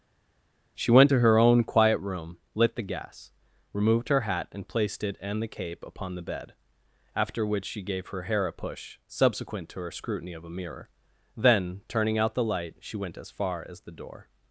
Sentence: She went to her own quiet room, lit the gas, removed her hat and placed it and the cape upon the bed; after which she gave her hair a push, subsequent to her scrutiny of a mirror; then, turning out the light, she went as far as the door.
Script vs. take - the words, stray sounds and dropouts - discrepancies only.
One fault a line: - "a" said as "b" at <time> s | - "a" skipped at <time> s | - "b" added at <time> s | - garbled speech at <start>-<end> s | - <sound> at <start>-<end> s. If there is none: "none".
none